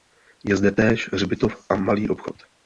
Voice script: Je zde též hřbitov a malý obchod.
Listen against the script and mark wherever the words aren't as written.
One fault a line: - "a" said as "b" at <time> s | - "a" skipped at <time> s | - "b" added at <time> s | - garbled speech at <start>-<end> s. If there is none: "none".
none